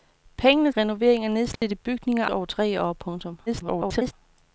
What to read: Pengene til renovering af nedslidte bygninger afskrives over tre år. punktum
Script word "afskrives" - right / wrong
wrong